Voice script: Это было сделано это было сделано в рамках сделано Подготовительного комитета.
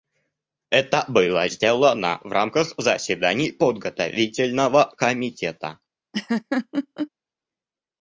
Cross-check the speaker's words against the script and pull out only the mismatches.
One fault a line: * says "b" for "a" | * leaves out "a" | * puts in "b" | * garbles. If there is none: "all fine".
* leaves out "это было сделано"
* says "заседаний" for "сделано"